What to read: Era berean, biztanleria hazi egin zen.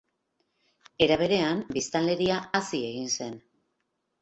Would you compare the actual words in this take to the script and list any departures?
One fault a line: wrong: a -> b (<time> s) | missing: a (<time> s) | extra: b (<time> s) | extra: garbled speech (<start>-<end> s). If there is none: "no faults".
no faults